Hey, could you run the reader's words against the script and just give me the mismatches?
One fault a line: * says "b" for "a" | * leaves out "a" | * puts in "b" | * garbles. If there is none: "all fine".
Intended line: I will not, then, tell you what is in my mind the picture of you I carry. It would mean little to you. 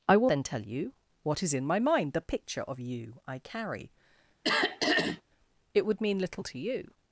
* leaves out "not"